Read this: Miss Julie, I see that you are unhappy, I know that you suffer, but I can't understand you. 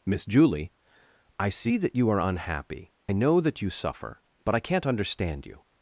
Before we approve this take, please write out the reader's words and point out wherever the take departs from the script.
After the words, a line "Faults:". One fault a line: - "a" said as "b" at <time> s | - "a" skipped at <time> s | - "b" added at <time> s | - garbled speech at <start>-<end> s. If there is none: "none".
Miss Julie, I see that you are unhappy, know that you suffer, but I can't understand you.
Faults:
- "I" skipped at 2.9 s